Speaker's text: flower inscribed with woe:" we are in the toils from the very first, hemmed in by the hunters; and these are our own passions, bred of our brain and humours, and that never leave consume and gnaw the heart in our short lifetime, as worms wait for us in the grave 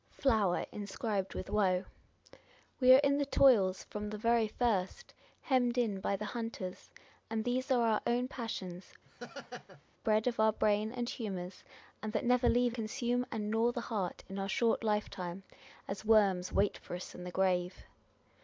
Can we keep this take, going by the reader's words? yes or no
yes